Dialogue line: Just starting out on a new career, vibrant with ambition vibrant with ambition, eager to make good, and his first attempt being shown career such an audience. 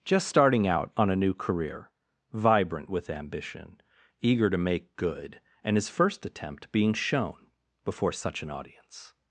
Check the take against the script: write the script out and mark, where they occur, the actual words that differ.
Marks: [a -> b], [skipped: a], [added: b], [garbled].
Just starting out on a new career, vibrant with ambition [skipped: vibrant with ambition,] eager to make good, and his first attempt being shown [career -> before] such an audience.